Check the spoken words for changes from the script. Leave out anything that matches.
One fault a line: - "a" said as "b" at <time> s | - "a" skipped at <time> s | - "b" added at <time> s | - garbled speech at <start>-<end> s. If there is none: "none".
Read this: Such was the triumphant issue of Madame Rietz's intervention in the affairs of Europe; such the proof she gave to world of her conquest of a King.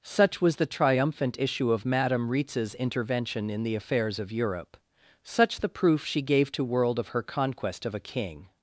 none